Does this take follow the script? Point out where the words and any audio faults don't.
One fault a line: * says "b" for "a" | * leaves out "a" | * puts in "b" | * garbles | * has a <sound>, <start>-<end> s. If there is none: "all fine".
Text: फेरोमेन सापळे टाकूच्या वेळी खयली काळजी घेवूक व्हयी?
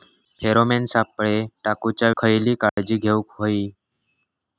* leaves out "वेळी"
* has a dropout, 2.7-2.8 s